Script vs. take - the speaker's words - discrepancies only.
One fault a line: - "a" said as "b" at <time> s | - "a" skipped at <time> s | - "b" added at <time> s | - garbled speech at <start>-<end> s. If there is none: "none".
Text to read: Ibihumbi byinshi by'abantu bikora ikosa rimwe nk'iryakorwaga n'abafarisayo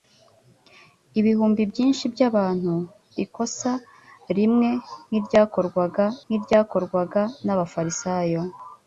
- "bikora" skipped at 2.7 s
- "nk'iryakorwaga" added at 6.3 s